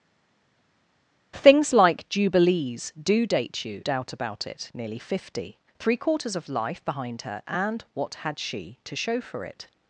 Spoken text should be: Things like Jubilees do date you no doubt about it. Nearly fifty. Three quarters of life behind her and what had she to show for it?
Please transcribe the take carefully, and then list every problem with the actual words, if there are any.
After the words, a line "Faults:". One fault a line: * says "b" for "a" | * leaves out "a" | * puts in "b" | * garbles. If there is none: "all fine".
Things like Jubilees do date you doubt about it. Nearly fifty. Three quarters of life behind her and what had she to show for it?
Faults:
* leaves out "no"